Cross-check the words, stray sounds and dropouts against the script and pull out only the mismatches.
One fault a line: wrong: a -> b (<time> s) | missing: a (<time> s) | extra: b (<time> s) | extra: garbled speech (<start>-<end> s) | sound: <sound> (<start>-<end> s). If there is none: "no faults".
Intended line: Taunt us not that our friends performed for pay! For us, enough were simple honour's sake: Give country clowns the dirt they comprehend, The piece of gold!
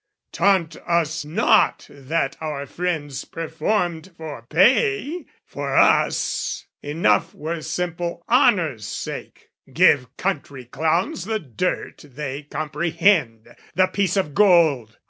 no faults